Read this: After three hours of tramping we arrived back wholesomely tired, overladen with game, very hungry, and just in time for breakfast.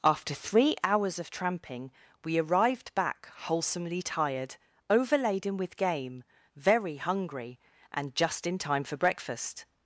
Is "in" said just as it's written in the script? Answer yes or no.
yes